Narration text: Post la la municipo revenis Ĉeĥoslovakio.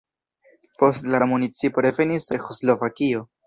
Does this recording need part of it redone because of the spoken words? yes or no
no